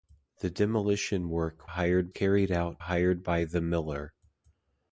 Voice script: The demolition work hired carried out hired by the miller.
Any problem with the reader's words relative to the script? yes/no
no